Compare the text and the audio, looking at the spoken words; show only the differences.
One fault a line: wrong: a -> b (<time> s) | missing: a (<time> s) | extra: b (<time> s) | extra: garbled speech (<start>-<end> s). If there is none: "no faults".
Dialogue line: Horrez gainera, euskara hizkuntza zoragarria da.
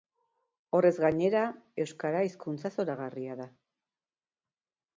no faults